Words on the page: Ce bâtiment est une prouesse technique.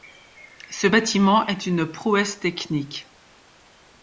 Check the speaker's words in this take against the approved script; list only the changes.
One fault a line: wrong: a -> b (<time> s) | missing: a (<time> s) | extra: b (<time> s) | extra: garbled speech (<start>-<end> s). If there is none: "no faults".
no faults